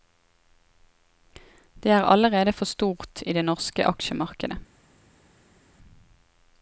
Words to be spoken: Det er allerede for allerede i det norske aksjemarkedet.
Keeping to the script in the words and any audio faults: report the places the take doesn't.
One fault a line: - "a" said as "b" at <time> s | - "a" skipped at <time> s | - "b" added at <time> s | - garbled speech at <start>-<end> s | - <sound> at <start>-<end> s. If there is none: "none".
- "allerede" said as "stort" at 2.6 s